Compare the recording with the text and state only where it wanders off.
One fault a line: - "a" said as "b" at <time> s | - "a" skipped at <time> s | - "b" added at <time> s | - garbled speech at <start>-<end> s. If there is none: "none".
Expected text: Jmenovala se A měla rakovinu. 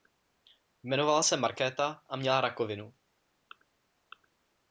- "Markéta" added at 1.4 s